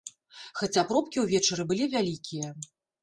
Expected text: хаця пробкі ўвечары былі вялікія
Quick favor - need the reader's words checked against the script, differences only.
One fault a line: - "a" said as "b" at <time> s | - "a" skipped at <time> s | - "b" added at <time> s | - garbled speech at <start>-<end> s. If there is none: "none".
none